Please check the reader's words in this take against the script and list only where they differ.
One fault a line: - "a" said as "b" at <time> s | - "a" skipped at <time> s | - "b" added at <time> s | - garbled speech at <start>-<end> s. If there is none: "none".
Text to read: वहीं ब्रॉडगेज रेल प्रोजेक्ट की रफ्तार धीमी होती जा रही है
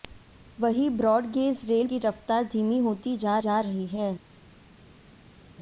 - "प्रोजेक्ट" skipped at 1.9 s
- "जा" added at 3.4 s